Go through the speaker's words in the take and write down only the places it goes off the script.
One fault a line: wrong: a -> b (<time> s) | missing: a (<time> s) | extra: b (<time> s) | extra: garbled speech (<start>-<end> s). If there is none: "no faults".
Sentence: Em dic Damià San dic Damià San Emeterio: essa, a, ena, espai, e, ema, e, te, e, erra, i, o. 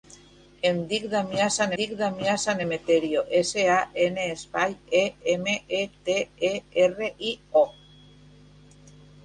no faults